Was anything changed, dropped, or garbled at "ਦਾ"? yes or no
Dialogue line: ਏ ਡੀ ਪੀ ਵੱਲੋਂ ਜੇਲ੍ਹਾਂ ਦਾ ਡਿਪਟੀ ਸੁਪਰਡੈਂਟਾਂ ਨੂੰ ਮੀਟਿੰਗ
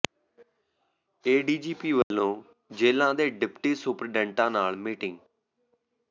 yes